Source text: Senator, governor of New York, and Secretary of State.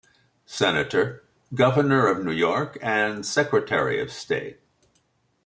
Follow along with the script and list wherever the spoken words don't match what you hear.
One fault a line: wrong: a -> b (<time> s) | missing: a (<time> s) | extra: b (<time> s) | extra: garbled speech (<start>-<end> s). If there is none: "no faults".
no faults